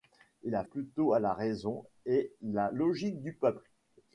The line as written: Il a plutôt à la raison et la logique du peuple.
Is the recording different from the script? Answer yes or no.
no